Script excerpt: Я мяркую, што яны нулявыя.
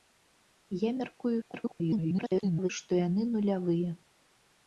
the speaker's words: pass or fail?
fail